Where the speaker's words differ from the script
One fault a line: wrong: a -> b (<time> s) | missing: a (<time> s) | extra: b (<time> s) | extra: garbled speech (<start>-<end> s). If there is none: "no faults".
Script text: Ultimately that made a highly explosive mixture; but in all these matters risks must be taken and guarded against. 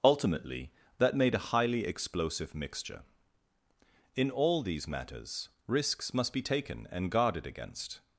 missing: but (3.0 s)